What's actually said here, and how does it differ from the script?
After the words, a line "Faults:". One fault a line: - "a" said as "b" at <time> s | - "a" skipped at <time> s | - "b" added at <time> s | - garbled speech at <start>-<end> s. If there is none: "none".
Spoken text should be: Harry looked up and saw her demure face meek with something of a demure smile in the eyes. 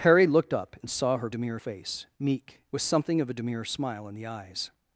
Harry looked up and saw her demure face meek with something of a demure smile in the eyes.
Faults:
none